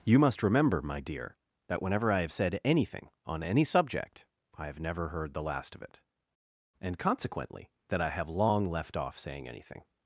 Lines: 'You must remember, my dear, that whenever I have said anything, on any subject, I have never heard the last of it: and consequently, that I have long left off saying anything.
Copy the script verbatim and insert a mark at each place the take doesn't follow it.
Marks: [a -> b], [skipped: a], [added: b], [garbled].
'You must remember, my dear, that whenever I have said anything, on any subject, I have never heard the last of it: and consequently, that I have long left off saying anything.